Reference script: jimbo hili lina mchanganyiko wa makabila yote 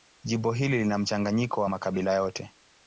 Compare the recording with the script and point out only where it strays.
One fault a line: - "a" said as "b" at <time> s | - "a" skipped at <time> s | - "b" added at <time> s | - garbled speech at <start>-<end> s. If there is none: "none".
none